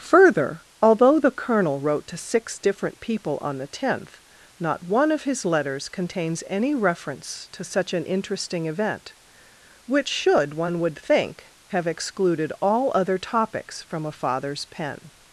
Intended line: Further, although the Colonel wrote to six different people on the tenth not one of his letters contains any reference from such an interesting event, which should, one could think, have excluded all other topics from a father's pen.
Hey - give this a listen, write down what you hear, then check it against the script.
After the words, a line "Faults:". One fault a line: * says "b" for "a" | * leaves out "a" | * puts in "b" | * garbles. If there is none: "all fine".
Further, although the Colonel wrote to six different people on the tenth not one of his letters contains any reference to such an interesting event, which should, one would think, have excluded all other topics from a father's pen.
Faults:
* says "to" for "from"
* says "would" for "could"